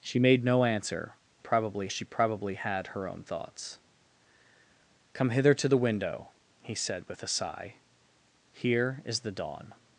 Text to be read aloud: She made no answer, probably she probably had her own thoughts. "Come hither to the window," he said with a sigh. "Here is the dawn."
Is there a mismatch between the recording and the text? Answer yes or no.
no